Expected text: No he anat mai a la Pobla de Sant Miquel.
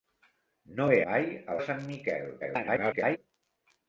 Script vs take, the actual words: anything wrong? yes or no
yes